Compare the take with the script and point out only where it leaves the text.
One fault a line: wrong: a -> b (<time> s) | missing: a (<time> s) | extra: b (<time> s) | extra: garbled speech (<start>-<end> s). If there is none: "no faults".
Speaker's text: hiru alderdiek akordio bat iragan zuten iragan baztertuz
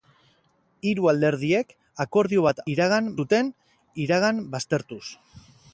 no faults